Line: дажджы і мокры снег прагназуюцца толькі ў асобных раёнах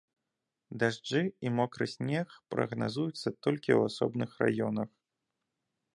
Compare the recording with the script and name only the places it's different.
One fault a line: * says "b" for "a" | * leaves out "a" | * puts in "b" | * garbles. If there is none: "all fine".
all fine